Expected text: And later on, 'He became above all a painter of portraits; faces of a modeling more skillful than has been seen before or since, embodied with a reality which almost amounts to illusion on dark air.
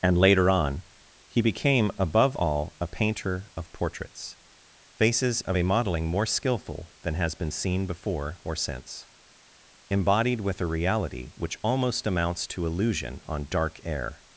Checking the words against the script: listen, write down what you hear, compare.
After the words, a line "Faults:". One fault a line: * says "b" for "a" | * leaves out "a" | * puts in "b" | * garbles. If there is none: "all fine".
And later on, 'He became above all a painter of portraits; faces of a modeling more skillful than has been seen before or since, embodied with a reality which almost amounts to illusion on dark air.
Faults:
all fine